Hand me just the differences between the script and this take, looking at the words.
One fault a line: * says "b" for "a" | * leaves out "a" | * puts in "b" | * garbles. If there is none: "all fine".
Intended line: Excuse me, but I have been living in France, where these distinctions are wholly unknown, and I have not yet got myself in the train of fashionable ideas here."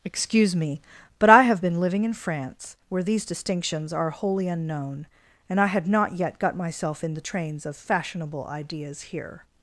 * says "had" for "have"
* says "trains" for "train"